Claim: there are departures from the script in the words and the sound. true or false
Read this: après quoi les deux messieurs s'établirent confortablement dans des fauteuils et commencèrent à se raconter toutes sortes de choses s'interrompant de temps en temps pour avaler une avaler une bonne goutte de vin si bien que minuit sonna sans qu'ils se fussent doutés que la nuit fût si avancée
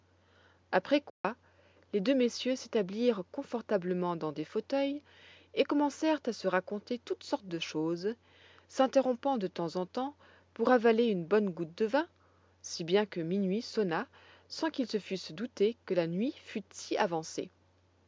true